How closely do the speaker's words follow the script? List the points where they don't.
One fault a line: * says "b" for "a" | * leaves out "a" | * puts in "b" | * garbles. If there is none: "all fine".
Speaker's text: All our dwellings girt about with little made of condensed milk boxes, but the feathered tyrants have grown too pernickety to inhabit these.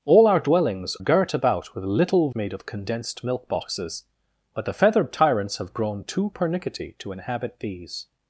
all fine